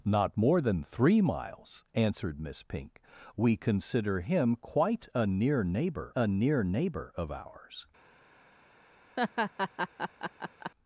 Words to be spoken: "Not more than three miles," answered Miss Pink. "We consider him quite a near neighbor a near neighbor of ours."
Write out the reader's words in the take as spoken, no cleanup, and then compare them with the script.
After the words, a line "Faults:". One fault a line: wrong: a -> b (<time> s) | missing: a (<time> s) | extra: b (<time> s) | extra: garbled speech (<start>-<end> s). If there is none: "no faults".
"Not more than three miles," answered Miss Pink. "We consider him quite a near neighbor a near neighbor of ours."
Faults:
no faults